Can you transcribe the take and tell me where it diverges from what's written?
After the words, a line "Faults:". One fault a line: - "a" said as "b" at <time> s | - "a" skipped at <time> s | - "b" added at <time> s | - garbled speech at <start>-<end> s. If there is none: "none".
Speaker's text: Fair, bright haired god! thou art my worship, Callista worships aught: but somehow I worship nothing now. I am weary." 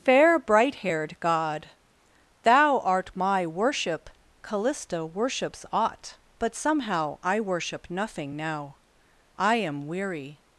Fair, bright haired god! thou art my worship, Callista worships aught: but somehow I worship nothing now. I am weary."
Faults:
none